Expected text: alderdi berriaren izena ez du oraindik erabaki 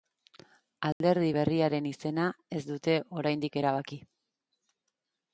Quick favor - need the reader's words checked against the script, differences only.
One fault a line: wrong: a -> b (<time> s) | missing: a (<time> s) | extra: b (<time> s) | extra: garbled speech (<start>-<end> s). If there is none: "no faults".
wrong: du -> dute (2.7 s)